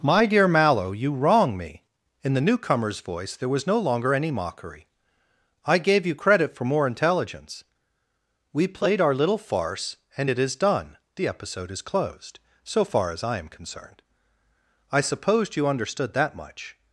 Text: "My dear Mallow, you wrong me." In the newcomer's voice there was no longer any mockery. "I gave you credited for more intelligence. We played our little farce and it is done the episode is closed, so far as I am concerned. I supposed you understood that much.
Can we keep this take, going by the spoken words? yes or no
no